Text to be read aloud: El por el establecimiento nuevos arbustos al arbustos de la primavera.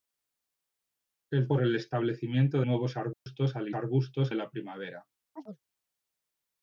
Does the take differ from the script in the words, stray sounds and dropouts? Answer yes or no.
yes